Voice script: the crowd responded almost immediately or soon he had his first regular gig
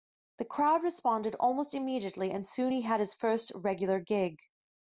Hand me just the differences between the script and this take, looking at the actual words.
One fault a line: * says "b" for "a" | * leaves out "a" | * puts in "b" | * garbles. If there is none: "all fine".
* says "and" for "or"